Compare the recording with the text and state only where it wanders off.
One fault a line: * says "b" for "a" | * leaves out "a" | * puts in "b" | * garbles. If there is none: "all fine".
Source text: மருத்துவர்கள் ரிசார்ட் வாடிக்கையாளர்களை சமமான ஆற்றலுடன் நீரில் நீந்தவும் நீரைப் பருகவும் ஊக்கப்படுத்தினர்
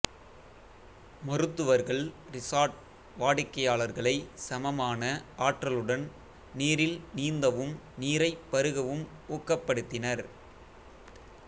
all fine